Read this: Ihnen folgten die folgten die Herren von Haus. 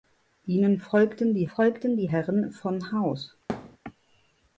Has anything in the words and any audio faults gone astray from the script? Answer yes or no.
yes